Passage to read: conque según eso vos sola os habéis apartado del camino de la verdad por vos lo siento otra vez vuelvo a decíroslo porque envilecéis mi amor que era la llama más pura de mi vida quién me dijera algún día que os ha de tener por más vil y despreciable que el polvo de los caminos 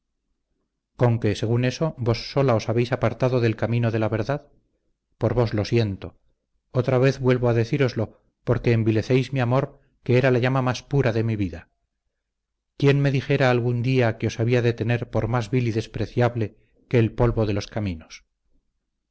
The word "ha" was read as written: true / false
false